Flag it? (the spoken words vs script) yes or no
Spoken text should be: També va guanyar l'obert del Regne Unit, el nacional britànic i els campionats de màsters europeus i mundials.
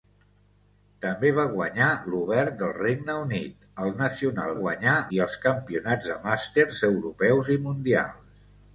yes